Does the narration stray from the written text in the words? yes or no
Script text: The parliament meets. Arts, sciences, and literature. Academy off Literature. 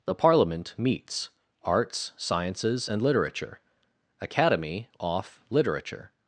no